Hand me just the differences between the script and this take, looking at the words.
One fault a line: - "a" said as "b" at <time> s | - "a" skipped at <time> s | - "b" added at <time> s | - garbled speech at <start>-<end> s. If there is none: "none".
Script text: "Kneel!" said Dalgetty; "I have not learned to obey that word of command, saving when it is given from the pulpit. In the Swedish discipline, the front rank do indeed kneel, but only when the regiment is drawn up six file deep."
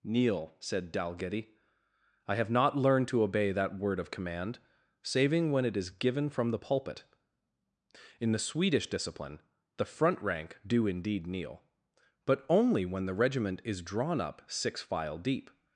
none